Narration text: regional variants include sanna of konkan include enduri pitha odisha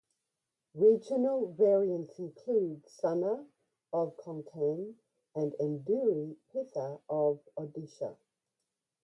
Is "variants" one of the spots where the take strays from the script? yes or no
no